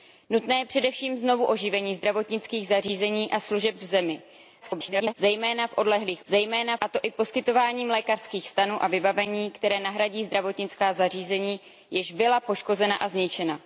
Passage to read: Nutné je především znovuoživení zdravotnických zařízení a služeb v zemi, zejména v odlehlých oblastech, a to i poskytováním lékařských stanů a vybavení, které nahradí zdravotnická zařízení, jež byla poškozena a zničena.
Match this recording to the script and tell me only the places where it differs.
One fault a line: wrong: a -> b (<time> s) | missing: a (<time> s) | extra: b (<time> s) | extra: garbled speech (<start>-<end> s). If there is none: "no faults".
extra: garbled speech (4.6-5.1 s)
wrong: oblastech -> zejména (6.3 s)